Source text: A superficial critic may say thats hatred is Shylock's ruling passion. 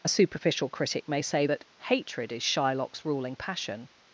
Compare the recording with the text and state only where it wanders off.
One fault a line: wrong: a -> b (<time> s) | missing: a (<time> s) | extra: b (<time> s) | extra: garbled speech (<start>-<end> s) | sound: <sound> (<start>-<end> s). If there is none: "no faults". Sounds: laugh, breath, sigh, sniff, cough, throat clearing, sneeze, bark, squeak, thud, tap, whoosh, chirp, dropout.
wrong: thats -> that (1.4 s)